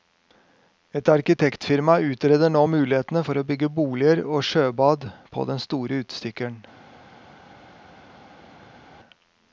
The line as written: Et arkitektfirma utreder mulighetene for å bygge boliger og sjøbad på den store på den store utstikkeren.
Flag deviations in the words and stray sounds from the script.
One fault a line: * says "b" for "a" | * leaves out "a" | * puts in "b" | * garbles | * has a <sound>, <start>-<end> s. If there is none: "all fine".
* puts in "nå"
* leaves out "på den store"